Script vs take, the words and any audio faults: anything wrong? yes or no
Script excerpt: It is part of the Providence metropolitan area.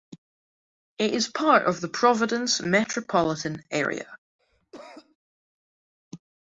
yes